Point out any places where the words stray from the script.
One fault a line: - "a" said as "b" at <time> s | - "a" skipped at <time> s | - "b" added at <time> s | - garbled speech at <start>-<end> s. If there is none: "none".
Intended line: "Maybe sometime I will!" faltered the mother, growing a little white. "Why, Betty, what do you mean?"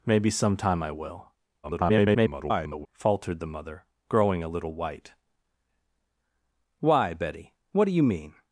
- garbled speech at 1.6-2.9 s